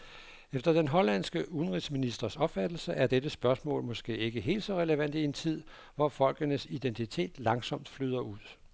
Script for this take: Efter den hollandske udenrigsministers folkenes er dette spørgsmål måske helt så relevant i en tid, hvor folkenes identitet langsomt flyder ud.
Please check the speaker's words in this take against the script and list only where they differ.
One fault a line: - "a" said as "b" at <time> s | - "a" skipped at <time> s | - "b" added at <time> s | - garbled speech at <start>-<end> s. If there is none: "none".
- "folkenes" said as "opfattelse" at 2.4 s
- "ikke" added at 4.2 s